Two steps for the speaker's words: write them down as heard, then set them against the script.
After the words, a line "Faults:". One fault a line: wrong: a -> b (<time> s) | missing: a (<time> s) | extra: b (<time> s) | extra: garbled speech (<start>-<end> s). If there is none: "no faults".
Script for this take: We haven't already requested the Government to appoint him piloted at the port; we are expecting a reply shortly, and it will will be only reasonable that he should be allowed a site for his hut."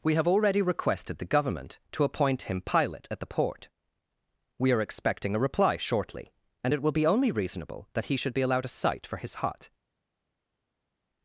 We have already requested the Government to appoint him pilot at the port; we are expecting a reply shortly, and it will be only reasonable that he should be allowed a site for his hut."
Faults:
wrong: haven't -> have (0.1 s)
wrong: piloted -> pilot (2.6 s)
missing: will (6.9 s)